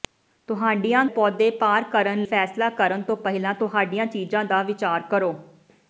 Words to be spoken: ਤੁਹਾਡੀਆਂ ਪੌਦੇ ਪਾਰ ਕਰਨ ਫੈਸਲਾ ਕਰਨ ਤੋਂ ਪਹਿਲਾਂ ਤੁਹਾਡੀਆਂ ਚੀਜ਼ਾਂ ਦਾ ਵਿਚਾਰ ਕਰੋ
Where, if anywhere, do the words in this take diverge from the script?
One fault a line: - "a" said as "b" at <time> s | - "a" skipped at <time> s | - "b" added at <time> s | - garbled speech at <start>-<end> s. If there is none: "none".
none